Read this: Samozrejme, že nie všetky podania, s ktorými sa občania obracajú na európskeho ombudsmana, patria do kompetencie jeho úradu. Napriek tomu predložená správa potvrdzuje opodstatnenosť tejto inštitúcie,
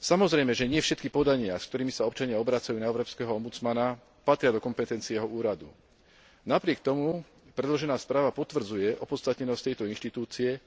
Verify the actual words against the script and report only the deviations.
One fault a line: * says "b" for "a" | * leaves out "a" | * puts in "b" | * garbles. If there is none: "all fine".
all fine